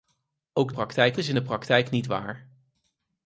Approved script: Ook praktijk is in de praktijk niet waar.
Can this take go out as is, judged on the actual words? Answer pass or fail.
pass